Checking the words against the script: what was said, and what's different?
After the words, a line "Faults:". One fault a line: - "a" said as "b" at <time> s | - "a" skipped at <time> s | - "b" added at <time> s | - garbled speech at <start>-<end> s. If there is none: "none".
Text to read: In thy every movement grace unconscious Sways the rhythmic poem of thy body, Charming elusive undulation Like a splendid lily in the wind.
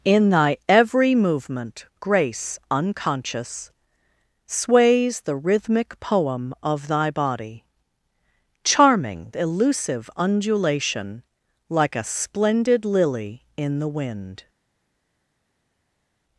In thy every movement grace unconscious Sways the rhythmic poem of thy body, Charming elusive undulation Like a splendid lily in the wind.
Faults:
none